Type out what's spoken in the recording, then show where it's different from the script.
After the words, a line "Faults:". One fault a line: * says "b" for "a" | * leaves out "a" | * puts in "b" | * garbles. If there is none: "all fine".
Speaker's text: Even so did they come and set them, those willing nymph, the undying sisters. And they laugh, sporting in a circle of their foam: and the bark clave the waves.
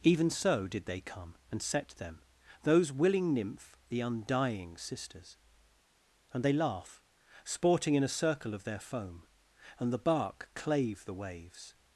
Even so did they come and set them, those willing nymph, the undying sisters. And they laugh, sporting in a circle of their foam: and the bark clave the waves.
Faults:
all fine